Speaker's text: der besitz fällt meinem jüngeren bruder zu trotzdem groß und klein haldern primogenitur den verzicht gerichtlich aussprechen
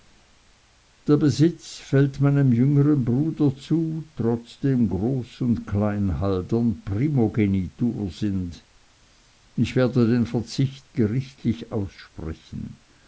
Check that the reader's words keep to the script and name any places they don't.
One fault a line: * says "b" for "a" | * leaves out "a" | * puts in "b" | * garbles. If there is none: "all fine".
* puts in "sind ich werde"